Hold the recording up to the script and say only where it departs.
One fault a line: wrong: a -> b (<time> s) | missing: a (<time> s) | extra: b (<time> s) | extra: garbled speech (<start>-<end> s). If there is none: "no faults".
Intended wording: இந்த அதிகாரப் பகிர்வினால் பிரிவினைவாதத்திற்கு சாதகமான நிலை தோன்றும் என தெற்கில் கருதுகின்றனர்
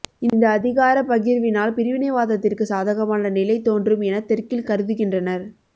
no faults